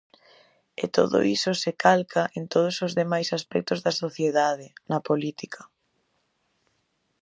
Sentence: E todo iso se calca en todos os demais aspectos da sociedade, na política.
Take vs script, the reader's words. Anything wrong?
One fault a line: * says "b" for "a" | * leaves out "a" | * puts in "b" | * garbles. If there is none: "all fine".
all fine